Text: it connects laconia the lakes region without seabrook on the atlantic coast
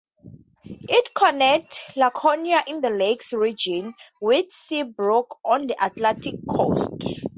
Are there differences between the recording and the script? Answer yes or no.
yes